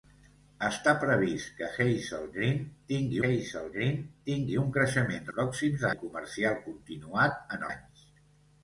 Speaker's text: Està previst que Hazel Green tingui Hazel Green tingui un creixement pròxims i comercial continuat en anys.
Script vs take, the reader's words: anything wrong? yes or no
no